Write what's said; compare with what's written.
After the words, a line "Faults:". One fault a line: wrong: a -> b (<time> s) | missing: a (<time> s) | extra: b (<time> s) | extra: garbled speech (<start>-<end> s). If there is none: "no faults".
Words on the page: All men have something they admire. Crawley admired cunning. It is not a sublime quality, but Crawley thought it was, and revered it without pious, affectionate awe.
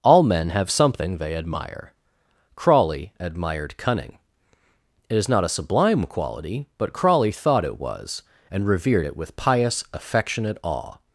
All men have something they admire. Crawley admired cunning. It is not a sublime quality, but Crawley thought it was, and revered it with pious, affectionate awe.
Faults:
wrong: without -> with (9.2 s)